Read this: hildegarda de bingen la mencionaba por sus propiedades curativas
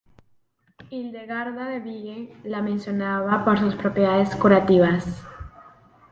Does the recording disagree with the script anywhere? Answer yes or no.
no